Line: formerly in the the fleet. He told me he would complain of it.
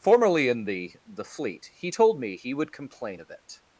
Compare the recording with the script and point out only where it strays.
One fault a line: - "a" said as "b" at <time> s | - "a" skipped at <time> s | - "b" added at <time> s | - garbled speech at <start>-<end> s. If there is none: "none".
none